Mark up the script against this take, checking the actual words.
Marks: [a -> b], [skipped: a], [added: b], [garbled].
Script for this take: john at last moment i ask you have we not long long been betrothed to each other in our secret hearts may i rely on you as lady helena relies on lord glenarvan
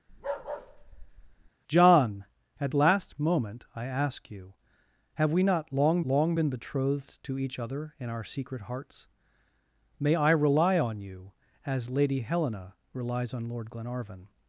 john at last moment i ask you have we not long long been betrothed to each other in our secret hearts may i rely on you as lady helena relies on lord glenarvan